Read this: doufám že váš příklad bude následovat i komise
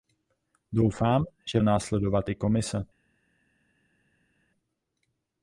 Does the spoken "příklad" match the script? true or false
false